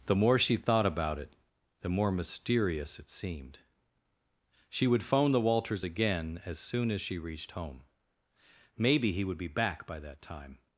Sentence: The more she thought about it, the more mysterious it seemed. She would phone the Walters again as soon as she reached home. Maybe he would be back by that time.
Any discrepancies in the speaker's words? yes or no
no